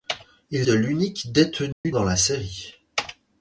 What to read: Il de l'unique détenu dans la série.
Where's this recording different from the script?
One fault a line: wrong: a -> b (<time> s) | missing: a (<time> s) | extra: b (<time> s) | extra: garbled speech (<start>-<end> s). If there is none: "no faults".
no faults